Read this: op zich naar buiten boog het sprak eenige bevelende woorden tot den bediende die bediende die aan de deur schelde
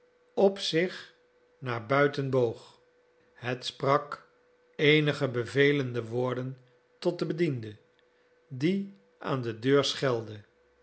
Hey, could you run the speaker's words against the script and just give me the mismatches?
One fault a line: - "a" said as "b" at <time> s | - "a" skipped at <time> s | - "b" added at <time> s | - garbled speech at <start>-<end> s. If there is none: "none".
- "bediende die" skipped at 8.9 s